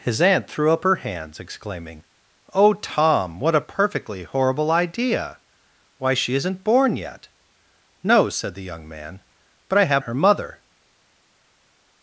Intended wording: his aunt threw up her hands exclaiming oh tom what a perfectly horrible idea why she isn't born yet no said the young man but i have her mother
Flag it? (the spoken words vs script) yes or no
no